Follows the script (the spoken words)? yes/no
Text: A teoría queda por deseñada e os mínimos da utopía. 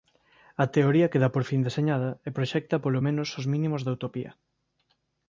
no